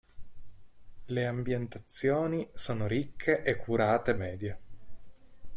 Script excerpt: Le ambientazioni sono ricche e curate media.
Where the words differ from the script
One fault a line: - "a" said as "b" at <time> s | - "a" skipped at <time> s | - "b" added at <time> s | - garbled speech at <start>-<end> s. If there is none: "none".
none